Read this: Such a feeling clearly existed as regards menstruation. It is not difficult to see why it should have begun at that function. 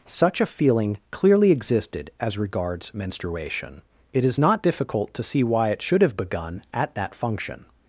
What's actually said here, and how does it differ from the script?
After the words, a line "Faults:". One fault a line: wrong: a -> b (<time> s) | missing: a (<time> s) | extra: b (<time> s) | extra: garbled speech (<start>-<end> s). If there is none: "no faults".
Such a feeling clearly existed as regards menstruation. It is not difficult to see why it should have begun at that function.
Faults:
no faults